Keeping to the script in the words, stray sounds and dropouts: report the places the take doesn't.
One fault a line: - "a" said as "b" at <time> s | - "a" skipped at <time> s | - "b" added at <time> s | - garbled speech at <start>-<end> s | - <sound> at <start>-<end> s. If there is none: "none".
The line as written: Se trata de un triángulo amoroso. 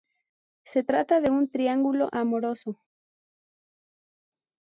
none